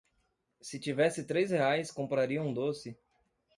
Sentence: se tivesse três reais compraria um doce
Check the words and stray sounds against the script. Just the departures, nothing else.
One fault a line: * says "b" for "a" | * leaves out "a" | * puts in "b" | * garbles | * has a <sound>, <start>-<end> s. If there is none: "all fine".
all fine